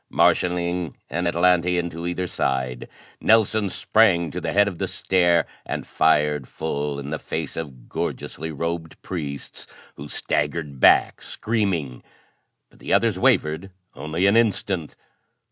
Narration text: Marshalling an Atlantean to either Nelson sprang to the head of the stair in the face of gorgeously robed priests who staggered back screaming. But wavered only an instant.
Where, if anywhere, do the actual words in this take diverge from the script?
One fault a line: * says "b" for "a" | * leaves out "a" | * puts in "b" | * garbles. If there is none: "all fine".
* puts in "side"
* puts in "and fired full"
* puts in "the others"